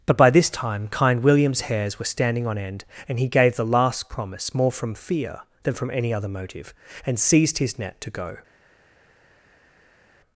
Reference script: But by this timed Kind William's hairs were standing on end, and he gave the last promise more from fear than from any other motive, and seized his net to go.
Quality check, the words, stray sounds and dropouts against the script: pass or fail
fail